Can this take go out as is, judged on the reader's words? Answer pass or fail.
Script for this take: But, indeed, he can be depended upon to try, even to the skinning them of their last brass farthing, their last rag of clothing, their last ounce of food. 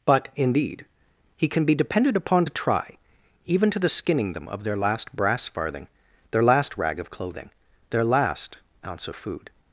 pass